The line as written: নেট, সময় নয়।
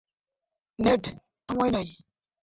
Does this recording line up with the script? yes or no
yes